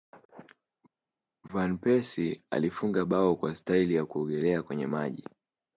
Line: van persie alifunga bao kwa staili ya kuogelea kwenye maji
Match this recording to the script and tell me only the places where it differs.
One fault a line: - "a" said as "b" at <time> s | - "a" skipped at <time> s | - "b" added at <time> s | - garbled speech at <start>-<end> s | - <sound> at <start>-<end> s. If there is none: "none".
none